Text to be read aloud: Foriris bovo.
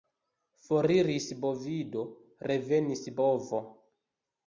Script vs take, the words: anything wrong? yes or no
yes